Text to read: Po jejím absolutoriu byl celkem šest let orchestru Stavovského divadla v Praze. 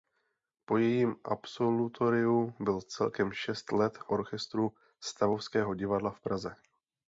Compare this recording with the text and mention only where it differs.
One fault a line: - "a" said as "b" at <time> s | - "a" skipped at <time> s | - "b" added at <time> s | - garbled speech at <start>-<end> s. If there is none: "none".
none